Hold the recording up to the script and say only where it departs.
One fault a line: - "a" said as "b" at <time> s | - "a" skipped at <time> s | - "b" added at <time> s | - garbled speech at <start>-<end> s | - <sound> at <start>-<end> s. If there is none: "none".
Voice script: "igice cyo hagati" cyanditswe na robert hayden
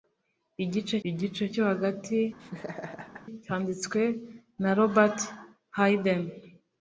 - "igice" added at 1.1 s
- laugh at 2.4-3.2 s